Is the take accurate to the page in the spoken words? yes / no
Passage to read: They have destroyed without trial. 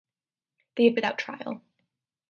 no